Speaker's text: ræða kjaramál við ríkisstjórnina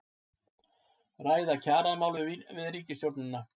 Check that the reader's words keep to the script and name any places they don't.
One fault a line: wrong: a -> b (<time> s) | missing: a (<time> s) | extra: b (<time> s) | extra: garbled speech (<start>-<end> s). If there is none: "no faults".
no faults